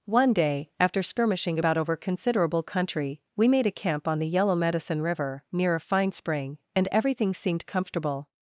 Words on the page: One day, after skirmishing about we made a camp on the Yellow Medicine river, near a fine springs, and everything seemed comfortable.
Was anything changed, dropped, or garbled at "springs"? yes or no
yes